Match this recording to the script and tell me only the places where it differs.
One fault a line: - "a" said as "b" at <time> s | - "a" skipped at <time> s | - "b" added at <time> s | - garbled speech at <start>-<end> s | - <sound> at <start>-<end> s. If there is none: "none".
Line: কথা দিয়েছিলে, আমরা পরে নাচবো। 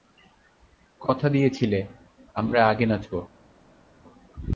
- "পরে" said as "আগে" at 2.7 s